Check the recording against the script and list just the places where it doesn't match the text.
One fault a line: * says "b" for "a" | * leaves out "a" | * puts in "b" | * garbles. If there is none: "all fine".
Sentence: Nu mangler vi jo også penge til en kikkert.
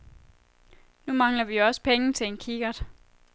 all fine